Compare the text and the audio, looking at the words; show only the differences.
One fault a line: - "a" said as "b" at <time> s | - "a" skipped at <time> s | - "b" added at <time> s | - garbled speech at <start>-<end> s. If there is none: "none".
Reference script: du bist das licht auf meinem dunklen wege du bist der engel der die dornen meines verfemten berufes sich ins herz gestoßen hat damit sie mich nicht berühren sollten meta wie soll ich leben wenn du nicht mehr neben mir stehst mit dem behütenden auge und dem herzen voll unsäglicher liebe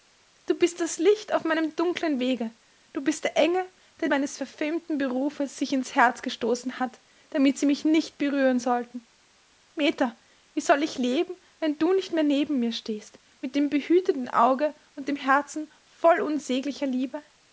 - "die dornen" skipped at 4.1 s